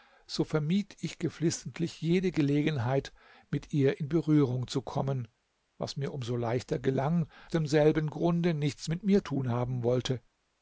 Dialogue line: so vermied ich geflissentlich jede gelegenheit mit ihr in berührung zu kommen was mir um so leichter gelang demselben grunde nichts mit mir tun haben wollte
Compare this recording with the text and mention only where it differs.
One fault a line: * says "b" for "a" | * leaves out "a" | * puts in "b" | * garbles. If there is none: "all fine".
all fine